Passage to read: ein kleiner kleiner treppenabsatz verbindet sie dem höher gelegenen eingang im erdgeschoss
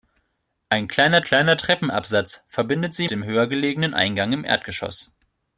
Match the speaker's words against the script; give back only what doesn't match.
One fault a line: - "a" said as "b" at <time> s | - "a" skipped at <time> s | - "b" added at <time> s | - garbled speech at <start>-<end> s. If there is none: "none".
none